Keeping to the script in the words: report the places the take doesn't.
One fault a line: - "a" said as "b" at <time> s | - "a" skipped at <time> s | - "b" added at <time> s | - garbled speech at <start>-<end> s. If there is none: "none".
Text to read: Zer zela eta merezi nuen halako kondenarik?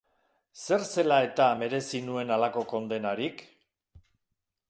none